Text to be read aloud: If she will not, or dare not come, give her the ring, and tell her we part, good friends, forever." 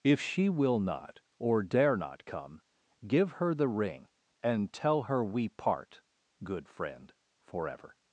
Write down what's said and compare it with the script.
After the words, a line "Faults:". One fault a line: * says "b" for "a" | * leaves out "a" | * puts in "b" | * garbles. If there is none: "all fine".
If she will not, or dare not come, give her the ring, and tell her we part, good friend, forever."
Faults:
* says "friend" for "friends"